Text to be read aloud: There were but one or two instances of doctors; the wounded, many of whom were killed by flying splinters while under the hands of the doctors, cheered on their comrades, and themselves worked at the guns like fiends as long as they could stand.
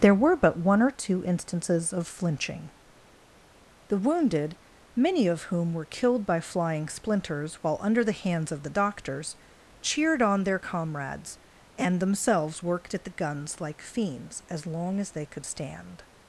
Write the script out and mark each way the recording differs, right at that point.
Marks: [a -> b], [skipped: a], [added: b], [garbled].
There were but one or two instances of [doctors; -> flinching] the wounded, many of whom were killed by flying splinters while under the hands of the doctors, cheered on their comrades, and themselves worked at the guns like fiends as long as they could stand.